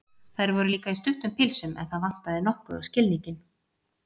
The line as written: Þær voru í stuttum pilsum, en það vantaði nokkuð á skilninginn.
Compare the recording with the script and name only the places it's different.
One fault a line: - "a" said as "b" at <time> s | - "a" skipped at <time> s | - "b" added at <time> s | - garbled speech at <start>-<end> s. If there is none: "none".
- "líka" added at 0.7 s